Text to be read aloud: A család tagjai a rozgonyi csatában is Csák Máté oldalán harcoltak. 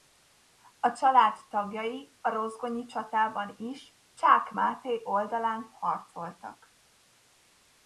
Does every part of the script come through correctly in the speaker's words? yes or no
yes